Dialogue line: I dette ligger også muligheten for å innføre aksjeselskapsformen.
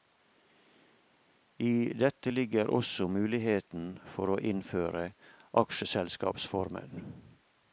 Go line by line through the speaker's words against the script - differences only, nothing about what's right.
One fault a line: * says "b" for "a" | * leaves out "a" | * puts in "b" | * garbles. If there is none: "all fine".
all fine